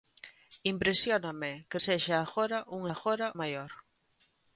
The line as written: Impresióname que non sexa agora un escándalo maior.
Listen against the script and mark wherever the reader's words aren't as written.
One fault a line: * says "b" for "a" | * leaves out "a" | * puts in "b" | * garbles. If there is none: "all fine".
* leaves out "non"
* says "agora" for "escándalo"